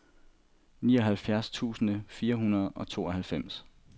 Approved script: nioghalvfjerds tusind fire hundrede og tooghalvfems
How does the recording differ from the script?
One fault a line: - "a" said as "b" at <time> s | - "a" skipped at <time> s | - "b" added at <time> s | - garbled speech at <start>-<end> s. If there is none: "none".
none